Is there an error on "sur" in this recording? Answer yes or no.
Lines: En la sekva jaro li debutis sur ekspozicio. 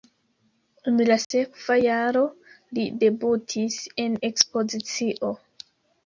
yes